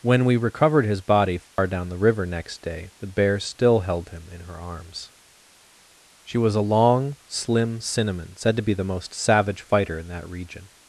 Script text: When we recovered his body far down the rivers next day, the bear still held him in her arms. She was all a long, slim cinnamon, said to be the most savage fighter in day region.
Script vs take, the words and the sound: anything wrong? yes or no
yes